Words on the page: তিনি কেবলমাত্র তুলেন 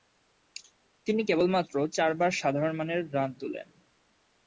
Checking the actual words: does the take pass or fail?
fail